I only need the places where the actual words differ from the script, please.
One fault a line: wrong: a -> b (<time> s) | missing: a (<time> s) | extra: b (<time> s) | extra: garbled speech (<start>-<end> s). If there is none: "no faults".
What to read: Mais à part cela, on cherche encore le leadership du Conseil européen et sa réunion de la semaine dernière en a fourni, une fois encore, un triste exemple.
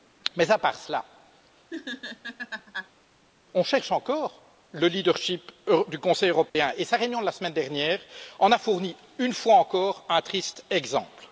no faults